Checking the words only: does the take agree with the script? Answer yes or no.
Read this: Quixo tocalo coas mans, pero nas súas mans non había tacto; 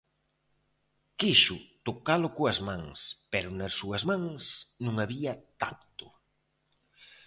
yes